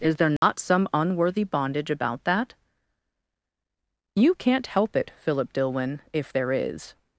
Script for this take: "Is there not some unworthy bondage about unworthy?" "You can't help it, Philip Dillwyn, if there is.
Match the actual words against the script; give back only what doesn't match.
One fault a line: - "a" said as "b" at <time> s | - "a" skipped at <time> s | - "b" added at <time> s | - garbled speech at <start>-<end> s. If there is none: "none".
- "unworthy" said as "that" at 2.2 s